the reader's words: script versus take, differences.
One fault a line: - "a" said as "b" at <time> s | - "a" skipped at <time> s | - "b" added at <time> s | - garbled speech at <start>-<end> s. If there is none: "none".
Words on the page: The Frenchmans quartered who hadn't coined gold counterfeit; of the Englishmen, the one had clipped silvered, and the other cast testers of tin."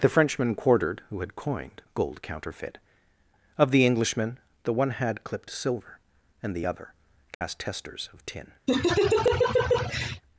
- "Frenchmans" said as "Frenchman" at 0.1 s
- "hadn't" said as "had" at 1.2 s
- "silvered" said as "silver" at 5.5 s